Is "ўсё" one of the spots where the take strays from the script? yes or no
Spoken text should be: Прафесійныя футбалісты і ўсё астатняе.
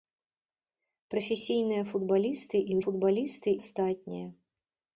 yes